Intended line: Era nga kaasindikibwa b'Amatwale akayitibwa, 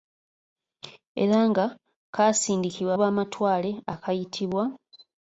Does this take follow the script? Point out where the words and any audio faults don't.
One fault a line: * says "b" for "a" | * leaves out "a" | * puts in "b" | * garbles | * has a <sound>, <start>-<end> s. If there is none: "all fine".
all fine